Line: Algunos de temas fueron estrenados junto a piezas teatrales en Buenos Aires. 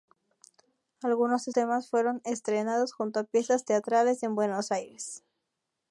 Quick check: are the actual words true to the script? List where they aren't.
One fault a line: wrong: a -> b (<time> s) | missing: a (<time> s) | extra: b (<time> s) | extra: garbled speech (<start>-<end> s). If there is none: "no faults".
no faults